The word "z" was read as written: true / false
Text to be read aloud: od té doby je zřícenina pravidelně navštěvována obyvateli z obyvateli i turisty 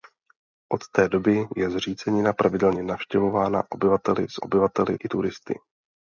true